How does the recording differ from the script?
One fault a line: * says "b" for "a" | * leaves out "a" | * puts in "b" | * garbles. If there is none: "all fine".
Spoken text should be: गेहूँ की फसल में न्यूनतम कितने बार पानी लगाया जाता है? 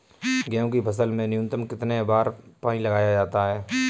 all fine